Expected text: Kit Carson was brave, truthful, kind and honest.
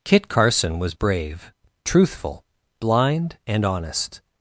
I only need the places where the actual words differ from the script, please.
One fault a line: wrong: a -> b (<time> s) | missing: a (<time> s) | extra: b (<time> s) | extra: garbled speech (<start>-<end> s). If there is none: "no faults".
wrong: kind -> blind (2.8 s)